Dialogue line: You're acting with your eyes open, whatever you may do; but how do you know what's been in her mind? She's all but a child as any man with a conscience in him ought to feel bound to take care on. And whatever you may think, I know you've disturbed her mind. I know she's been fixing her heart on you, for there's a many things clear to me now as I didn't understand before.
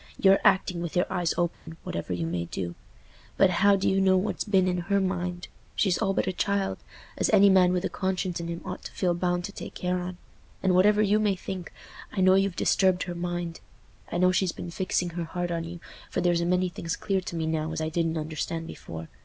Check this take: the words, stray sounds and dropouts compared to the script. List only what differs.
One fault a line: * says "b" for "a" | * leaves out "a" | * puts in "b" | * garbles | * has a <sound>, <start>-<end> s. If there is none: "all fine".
* has a dropout, 1.5-1.7 s